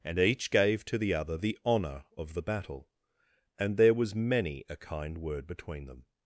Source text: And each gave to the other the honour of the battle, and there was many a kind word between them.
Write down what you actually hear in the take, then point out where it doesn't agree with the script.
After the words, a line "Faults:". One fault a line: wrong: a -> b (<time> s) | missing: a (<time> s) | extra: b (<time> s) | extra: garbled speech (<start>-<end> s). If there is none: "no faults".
And each gave to the other the honour of the battle, and there was many a kind word between them.
Faults:
no faults